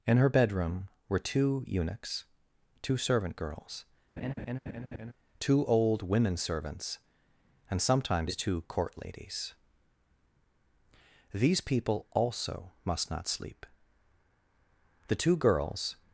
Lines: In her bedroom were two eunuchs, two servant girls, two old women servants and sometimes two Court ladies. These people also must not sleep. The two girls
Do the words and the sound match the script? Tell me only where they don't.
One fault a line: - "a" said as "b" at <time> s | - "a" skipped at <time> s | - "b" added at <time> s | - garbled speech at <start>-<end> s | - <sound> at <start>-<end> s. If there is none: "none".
- laugh at 4.2-5.1 s